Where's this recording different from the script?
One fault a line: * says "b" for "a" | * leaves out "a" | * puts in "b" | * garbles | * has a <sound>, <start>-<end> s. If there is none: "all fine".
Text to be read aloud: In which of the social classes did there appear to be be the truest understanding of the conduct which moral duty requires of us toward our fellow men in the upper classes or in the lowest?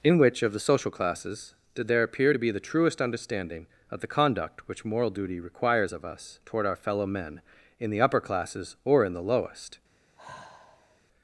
* leaves out "be"
* has a sigh, 10.2-11.0 s